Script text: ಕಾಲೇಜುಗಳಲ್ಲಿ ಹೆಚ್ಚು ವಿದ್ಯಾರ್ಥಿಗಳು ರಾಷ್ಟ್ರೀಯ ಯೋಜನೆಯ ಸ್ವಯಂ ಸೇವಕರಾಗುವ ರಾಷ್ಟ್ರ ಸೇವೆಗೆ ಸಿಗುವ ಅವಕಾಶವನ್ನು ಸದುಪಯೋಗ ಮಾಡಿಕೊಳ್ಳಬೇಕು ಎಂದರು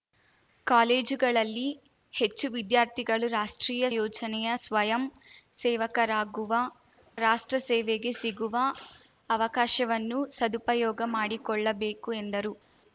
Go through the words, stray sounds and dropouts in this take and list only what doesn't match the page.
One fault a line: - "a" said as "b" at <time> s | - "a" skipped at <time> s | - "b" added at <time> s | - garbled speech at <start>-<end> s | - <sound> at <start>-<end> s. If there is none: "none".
none